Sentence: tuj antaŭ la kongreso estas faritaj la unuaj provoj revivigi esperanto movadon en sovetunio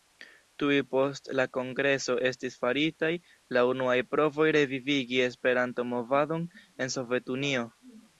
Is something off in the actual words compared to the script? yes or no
yes